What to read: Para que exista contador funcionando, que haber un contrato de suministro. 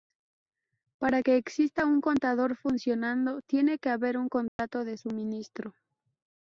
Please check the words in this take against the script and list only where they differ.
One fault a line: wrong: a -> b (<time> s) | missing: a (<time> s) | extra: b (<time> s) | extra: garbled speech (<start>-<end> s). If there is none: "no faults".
extra: un (1.8 s)
extra: tiene (3.4 s)